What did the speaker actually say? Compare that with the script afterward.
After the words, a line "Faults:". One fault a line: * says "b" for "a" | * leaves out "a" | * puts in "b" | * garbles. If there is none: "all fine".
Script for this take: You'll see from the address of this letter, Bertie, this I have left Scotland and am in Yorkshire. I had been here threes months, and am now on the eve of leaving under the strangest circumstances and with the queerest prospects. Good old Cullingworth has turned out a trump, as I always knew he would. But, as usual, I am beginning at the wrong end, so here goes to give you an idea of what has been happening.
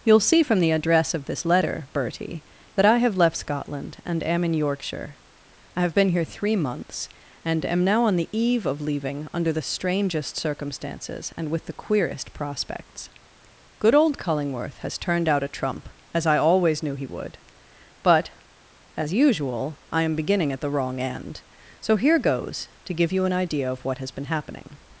You'll see from the address of this letter, Bertie, that I have left Scotland and am in Yorkshire. I have been here three months, and am now on the eve of leaving under the strangest circumstances and with the queerest prospects. Good old Cullingworth has turned out a trump, as I always knew he would. But, as usual, I am beginning at the wrong end, so here goes to give you an idea of what has been happening.
Faults:
* says "that" for "this"
* says "have" for "had"
* says "three" for "threes"